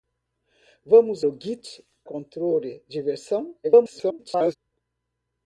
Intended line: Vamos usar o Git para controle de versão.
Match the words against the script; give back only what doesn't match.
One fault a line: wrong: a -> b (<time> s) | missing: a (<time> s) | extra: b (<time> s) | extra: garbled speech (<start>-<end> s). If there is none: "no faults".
missing: usar (1.2 s)
missing: para (1.8 s)
extra: garbled speech (3.6-4.6 s)